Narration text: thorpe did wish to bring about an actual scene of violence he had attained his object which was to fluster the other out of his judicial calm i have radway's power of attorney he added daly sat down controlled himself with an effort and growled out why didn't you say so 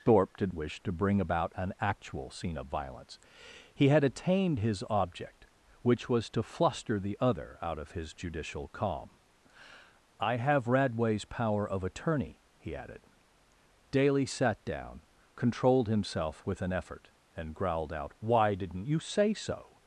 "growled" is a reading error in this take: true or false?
false